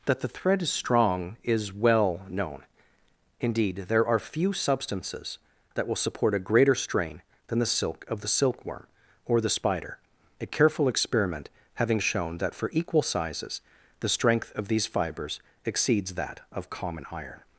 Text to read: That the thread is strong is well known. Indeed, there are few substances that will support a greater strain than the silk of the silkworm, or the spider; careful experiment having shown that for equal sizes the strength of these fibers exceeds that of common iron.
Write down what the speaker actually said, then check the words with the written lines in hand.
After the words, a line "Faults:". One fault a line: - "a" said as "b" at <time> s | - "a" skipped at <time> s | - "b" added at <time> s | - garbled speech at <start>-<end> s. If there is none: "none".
That the thread is strong is well known. Indeed, there are few substances that will support a greater strain than the silk of the silkworm, or the spider; a careful experiment having shown that for equal sizes the strength of these fibers exceeds that of common iron.
Faults:
- "a" added at 10.4 s